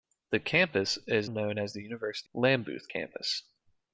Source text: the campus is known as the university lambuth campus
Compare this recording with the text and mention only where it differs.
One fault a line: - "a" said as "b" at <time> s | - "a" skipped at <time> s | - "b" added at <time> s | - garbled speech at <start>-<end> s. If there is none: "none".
none